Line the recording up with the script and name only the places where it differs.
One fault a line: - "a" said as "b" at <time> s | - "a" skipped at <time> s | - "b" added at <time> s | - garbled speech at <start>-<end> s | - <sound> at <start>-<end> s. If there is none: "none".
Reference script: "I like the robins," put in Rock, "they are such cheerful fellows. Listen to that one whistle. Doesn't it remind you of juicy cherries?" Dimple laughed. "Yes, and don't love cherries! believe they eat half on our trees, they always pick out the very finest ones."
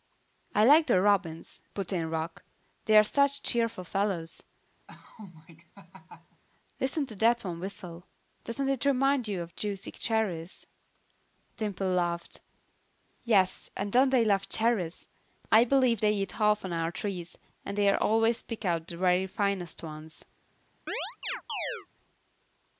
- laugh at 4.9-6.4 s
- "they" added at 14.1 s
- "I" added at 15.5 s
- "and" added at 17.6 s
- chirp at 20.9-21.9 s